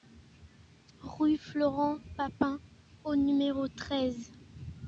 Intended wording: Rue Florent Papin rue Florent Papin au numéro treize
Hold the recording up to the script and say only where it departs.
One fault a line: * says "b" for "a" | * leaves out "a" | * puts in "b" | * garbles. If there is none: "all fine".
* leaves out "rue Florent Papin"